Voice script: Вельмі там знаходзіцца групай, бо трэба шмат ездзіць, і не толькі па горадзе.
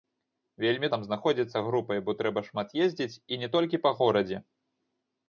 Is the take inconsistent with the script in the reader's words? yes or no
no